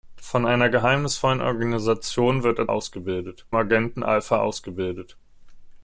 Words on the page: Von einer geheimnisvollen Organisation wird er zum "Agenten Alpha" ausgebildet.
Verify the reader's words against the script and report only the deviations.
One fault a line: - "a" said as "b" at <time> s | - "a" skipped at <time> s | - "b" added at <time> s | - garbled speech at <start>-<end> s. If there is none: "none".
- "zum" said as "ausgebildet" at 2.7 s